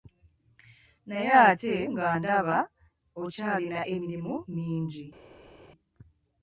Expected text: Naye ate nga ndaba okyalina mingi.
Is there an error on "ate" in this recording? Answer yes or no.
no